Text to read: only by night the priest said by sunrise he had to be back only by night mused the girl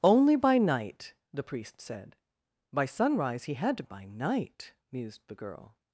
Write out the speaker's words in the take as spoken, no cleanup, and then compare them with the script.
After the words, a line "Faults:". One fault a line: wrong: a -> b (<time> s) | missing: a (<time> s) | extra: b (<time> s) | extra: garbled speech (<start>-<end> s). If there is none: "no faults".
only by night the priest said by sunrise he had to by night mused the girl
Faults:
missing: be back only (3.8 s)